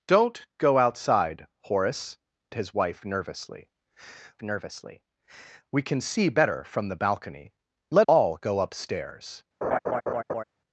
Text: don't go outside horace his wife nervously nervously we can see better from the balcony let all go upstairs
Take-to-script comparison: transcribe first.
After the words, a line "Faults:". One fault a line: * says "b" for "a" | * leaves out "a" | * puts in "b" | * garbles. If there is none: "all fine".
don't go outside horace his wife nervously nervously we can see better from the balcony let all go upstairs
Faults:
all fine